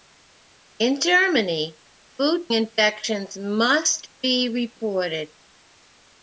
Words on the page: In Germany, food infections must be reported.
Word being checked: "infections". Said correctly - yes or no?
yes